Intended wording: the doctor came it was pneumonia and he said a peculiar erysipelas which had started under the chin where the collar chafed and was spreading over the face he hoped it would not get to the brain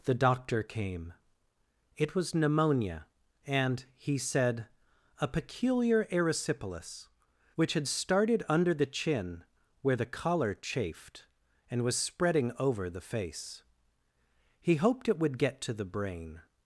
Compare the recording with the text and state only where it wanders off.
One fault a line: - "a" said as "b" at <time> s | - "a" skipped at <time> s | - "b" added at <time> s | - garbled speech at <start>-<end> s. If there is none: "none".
- "not" skipped at 15.4 s